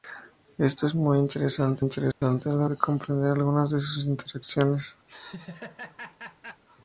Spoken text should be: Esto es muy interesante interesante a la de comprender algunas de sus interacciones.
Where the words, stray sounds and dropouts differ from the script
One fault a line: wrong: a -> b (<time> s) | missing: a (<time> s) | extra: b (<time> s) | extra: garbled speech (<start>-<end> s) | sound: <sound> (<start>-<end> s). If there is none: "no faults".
sound: dropout (2.1-2.2 s)
sound: laugh (5.1-6.6 s)